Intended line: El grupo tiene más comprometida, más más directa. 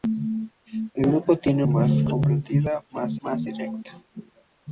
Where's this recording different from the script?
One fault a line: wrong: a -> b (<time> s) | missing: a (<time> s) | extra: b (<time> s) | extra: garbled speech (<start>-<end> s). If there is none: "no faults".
no faults